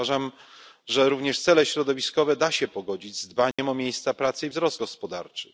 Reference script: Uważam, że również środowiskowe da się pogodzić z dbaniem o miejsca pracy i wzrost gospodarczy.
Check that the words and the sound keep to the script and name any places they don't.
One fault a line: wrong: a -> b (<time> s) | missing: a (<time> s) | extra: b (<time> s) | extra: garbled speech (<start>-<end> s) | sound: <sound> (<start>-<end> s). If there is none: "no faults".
extra: cele (1.4 s)
sound: dropout (3.5-3.6 s)